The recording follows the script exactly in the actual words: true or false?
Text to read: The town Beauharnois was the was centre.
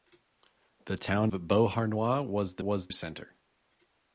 true